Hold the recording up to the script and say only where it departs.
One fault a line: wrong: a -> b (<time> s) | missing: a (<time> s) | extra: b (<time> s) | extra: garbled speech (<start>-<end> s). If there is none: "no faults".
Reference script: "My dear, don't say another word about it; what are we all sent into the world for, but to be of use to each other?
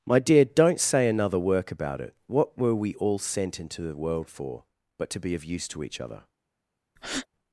wrong: word -> work (1.4 s)
wrong: are -> were (2.6 s)